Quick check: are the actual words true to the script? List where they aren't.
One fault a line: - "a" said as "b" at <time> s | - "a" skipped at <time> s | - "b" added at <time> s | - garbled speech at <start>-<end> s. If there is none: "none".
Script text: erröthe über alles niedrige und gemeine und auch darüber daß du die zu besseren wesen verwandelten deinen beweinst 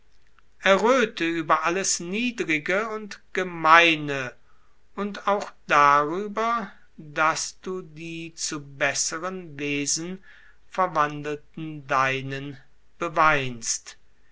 none